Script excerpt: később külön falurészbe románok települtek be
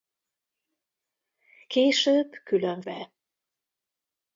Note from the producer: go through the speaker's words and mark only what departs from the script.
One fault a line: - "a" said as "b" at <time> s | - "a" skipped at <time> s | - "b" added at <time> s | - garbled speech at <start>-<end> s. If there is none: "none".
- "falurészbe románok települtek" skipped at 2.8 s